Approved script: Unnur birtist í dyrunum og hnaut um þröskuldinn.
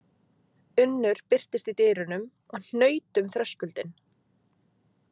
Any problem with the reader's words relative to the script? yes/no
no